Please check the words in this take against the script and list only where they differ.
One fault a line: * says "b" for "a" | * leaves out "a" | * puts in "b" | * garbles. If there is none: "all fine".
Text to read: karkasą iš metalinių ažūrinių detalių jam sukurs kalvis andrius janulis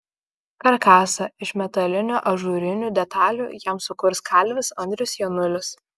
all fine